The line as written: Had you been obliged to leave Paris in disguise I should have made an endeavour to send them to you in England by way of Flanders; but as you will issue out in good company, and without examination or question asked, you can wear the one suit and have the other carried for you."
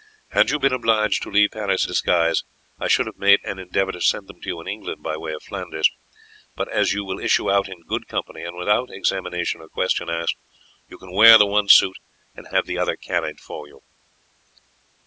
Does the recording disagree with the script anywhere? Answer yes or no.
yes